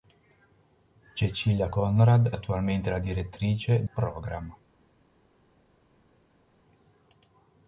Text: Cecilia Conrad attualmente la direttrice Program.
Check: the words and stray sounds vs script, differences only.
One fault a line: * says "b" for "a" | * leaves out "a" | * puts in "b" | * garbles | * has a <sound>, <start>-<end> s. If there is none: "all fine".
all fine